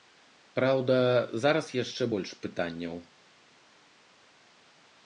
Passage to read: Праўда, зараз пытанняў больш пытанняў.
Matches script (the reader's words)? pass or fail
fail